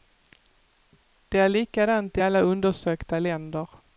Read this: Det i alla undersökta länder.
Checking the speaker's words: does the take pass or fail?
fail